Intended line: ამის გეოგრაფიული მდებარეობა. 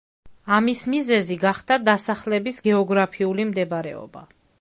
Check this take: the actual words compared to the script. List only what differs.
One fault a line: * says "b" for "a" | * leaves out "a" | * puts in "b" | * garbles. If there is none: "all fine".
* puts in "მიზეზი გახდა დასახლების"